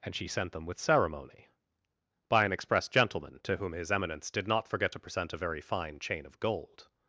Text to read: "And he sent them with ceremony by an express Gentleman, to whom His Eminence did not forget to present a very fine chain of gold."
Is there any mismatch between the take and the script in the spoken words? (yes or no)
yes